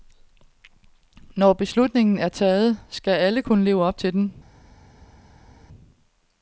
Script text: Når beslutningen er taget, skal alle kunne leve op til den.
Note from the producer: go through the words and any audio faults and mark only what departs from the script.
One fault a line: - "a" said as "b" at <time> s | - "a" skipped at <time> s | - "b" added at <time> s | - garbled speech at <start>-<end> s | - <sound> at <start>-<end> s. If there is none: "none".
none